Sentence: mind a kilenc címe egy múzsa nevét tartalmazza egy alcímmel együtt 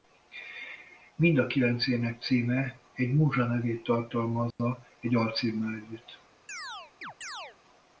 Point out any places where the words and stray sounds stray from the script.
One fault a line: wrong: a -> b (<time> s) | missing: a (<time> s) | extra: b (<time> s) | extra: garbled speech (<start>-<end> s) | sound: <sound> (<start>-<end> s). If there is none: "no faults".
extra: ének (1.9 s)
sound: dropout (4.5-4.6 s)
sound: chirp (6.5-7.6 s)